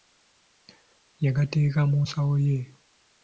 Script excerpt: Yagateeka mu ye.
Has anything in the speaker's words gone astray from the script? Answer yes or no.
yes